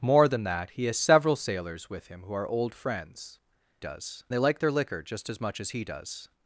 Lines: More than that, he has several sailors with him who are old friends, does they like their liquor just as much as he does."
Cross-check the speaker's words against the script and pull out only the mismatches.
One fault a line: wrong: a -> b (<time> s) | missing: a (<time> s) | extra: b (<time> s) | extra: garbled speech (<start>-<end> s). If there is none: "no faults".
no faults